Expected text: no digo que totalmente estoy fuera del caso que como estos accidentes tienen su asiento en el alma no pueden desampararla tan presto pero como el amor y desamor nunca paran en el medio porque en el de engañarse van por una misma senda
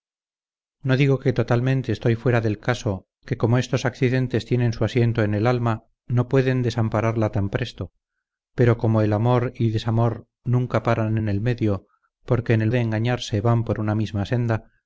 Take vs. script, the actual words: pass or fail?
pass